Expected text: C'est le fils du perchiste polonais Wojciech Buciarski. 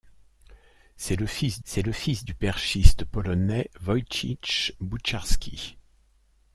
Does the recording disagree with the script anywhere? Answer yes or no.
yes